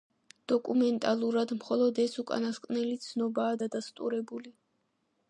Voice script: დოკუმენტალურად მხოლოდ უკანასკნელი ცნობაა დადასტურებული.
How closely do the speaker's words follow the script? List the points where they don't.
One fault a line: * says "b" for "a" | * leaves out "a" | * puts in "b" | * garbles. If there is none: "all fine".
* puts in "ეს"